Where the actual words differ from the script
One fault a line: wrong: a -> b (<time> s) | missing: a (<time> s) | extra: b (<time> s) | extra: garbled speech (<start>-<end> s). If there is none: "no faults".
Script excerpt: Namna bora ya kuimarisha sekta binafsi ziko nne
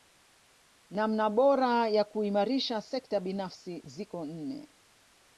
no faults